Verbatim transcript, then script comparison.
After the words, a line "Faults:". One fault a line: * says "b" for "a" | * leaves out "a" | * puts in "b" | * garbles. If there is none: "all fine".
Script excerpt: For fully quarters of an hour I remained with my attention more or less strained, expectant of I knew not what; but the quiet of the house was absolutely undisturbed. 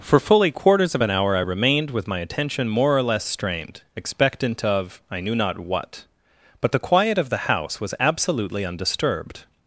For fully quarters of an hour I remained with my attention more or less strained, expectant of I knew not what; but the quiet of the house was absolutely undisturbed.
Faults:
all fine